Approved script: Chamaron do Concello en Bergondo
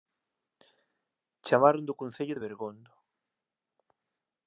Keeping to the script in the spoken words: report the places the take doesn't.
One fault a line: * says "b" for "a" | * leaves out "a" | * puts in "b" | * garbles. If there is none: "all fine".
* says "de" for "en"